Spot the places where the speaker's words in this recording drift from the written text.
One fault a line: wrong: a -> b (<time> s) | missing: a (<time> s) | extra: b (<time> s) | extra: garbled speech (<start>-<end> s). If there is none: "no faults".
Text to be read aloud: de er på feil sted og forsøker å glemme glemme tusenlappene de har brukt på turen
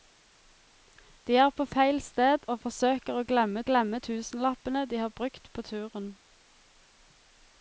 no faults